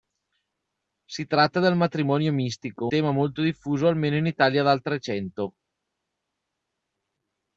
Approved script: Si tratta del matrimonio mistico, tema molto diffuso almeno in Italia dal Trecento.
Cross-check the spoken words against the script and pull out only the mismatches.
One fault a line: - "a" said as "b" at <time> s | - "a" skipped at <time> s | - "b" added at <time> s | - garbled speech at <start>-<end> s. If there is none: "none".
none